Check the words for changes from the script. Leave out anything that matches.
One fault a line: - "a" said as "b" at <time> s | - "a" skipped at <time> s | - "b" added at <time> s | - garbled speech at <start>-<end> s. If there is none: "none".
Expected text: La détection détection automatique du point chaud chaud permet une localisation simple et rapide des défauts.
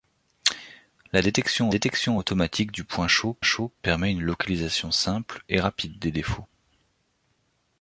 none